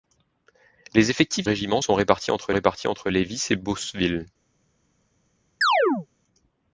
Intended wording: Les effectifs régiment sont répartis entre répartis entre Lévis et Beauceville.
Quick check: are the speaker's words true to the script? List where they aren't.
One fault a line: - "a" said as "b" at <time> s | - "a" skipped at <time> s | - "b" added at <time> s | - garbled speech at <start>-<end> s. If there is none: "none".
none